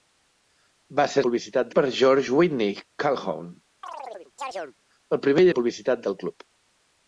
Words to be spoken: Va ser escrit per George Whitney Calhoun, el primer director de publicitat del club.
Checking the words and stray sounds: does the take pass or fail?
fail